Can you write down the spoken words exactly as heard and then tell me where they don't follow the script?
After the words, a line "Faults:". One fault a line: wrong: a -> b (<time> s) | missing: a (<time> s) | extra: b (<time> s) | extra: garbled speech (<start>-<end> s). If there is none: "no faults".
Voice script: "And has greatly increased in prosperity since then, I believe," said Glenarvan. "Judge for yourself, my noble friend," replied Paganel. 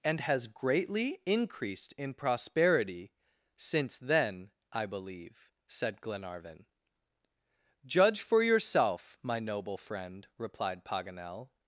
"And has greatly increased in prosperity since then, I believe," said Glenarvan. "Judge for yourself, my noble friend," replied Paganel.
Faults:
no faults